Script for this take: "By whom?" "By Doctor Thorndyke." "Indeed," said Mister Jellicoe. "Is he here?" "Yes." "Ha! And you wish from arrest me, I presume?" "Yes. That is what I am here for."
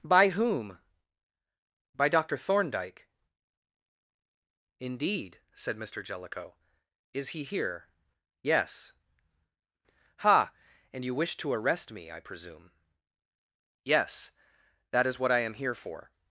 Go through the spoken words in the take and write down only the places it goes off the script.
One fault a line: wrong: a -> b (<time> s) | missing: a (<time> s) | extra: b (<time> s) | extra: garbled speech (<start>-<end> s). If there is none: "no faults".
wrong: from -> to (11.4 s)